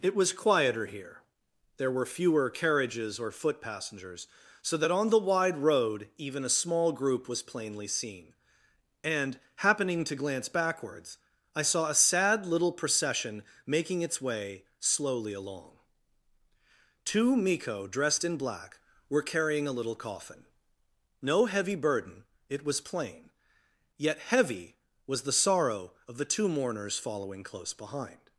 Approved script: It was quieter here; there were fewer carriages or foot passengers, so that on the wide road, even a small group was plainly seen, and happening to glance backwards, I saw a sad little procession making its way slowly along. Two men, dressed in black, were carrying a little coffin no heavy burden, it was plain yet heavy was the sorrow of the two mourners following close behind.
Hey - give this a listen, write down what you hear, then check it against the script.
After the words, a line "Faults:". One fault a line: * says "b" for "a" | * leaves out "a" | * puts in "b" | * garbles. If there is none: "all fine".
It was quieter here; there were fewer carriages or foot passengers, so that on the wide road, even a small group was plainly seen, and happening to glance backwards, I saw a sad little procession making its way slowly along. Two miko, dressed in black, were carrying a little coffin no heavy burden, it was plain yet heavy was the sorrow of the two mourners following close behind.
Faults:
* says "miko" for "men"